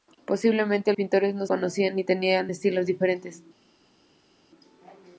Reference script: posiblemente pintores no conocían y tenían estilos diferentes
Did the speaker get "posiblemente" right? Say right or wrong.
right